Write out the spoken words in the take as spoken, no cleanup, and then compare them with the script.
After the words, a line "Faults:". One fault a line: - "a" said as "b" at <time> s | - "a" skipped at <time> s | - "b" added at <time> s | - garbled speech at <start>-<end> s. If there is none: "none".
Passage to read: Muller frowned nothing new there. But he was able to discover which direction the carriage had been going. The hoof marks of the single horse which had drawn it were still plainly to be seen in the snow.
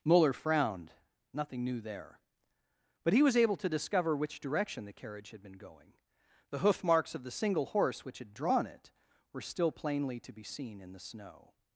Muller frowned nothing new there. But he was able to discover which direction the carriage had been going. The hoof marks of the single horse which had drawn it were still plainly to be seen in the snow.
Faults:
none